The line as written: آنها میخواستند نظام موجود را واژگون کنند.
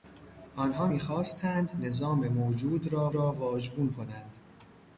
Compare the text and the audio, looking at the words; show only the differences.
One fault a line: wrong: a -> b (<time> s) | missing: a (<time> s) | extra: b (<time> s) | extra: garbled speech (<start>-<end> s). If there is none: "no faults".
extra: را (3.1 s)